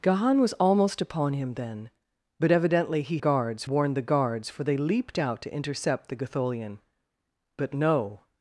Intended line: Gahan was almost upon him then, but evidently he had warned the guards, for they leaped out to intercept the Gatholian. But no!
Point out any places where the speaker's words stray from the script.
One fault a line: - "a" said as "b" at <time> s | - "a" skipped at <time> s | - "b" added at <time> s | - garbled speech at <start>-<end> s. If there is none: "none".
- "had" said as "guards" at 3.2 s